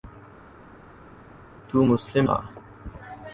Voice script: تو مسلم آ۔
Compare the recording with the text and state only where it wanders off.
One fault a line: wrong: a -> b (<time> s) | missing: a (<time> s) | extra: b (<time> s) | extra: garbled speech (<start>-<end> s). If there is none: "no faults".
no faults